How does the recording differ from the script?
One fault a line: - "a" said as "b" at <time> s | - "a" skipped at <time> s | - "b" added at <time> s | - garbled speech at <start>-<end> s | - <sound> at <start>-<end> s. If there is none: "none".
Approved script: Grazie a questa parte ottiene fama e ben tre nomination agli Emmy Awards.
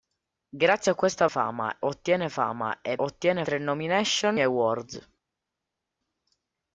- "parte" said as "fama" at 1.3 s
- "ben" said as "ottiene" at 3.0 s
- "agli Emmy" skipped at 4.4 s